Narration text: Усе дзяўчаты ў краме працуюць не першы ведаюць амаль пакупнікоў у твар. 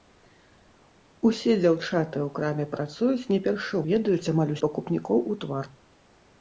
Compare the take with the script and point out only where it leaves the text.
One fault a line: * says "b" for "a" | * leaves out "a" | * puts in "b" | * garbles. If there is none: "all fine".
all fine